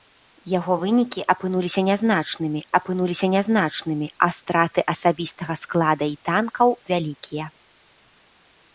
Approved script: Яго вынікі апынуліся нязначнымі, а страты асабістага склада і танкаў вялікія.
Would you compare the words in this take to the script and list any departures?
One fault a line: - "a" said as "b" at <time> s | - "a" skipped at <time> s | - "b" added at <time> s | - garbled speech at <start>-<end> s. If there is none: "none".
- "апынуліся нязначнымі" added at 2.8 s